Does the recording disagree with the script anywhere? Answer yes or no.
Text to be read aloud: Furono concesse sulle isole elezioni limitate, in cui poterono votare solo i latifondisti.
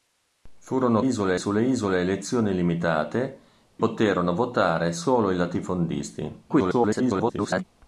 yes